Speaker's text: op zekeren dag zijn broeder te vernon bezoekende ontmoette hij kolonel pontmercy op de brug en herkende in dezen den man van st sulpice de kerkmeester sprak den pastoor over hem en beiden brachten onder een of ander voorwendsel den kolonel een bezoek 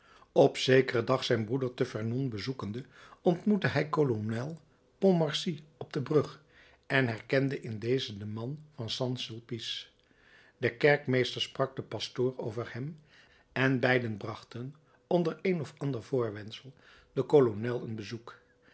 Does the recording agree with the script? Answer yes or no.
yes